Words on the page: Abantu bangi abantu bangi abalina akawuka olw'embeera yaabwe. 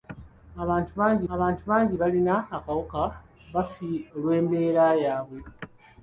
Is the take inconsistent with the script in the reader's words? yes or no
no